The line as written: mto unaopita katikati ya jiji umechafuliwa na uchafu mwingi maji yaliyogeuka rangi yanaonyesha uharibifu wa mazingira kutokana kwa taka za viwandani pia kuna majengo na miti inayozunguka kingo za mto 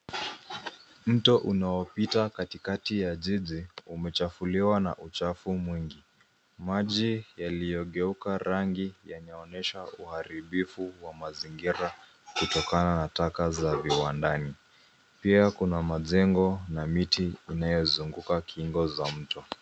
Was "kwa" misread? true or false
true